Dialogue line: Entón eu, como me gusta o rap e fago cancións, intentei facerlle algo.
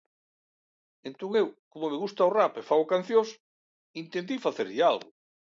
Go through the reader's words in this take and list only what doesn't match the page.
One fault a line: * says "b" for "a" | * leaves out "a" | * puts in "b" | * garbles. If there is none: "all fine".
all fine